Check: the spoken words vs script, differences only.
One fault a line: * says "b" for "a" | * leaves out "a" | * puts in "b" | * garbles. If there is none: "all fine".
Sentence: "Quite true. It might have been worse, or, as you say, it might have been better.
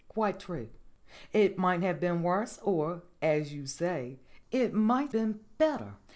* leaves out "have"